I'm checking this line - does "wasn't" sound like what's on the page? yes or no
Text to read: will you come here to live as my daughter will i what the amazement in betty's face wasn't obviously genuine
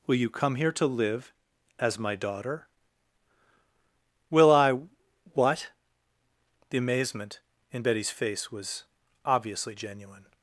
no